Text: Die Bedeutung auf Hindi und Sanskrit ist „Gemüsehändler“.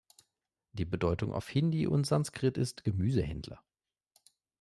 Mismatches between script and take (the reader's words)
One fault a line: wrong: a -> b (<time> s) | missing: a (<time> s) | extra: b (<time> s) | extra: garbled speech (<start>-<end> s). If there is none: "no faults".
no faults